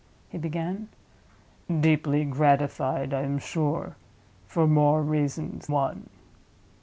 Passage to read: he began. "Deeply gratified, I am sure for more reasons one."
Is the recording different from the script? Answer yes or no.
no